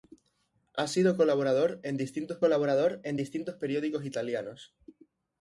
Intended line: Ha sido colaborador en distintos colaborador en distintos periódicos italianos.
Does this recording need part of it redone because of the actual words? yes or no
no